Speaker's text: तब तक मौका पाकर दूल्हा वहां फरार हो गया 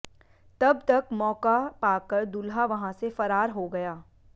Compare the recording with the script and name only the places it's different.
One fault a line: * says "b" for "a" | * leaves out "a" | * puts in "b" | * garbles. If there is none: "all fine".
* puts in "से"